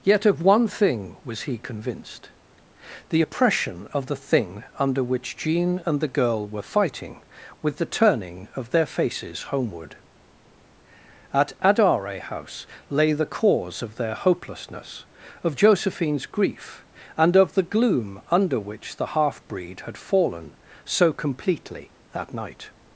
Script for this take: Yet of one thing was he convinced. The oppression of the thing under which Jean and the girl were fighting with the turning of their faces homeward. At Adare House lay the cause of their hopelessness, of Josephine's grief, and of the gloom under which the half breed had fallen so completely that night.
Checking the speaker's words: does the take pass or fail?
pass